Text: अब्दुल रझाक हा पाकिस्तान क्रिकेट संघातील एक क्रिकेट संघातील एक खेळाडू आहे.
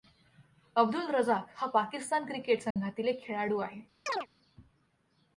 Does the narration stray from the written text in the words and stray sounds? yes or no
yes